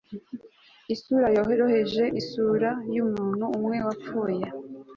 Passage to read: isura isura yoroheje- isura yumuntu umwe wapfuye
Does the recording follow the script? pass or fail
fail